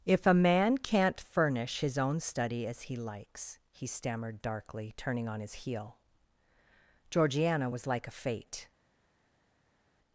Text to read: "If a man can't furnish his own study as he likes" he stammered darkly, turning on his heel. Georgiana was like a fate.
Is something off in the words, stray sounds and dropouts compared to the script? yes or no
no